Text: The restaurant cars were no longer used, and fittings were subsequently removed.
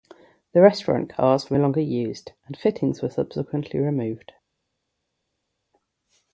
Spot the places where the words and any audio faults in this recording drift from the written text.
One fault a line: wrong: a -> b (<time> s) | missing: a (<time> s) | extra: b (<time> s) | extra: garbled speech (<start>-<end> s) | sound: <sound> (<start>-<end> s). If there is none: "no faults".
missing: no (1.6 s)